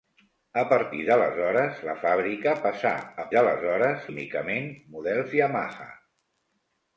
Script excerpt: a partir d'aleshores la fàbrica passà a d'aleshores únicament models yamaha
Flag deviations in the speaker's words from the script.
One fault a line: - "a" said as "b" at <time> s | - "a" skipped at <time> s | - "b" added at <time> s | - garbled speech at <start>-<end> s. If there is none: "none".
none